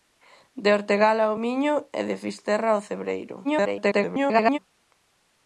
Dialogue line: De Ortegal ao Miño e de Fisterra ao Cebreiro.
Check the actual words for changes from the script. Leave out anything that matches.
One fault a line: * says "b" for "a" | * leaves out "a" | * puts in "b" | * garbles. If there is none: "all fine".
* garbles